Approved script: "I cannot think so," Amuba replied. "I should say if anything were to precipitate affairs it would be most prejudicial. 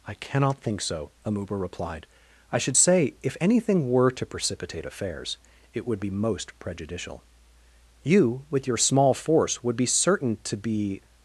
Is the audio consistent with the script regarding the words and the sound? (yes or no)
no